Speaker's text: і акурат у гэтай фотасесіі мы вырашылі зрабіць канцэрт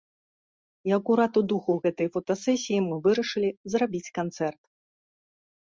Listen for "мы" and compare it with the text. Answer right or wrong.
right